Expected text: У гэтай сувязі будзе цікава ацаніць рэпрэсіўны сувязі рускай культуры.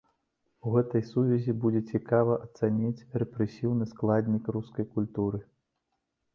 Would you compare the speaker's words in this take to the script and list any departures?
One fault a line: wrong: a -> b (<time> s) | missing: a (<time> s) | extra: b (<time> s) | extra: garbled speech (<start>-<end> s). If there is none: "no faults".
wrong: сувязі -> складнік (4.0 s)